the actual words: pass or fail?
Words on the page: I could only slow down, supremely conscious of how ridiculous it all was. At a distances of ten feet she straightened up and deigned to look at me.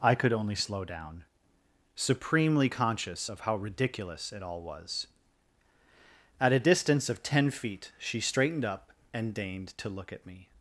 fail